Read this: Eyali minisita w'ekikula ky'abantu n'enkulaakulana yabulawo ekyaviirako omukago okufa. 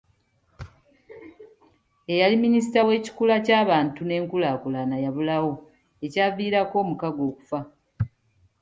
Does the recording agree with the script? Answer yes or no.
yes